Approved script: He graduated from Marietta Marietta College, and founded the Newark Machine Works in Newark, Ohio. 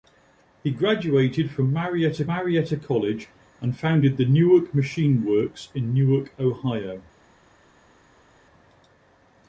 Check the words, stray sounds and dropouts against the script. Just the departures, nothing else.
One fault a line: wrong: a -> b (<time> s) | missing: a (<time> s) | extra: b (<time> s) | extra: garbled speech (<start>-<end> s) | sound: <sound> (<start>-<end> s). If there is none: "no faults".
no faults